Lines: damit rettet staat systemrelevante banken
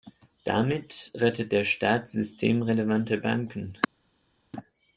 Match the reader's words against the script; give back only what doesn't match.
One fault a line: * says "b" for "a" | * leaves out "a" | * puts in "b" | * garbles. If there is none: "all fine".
* puts in "der"